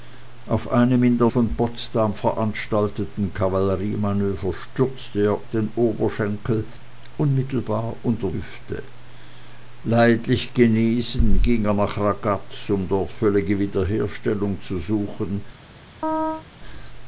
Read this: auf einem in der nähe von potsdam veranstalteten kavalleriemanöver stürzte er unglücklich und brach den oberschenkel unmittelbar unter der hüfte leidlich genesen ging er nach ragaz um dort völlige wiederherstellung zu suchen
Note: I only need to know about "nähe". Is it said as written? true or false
false